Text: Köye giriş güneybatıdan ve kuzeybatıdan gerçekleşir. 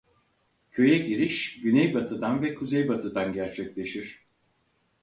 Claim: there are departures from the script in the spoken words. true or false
false